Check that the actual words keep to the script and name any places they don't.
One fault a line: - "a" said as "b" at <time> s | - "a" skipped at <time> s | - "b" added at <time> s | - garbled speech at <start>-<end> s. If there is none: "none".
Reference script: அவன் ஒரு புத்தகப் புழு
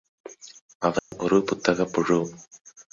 none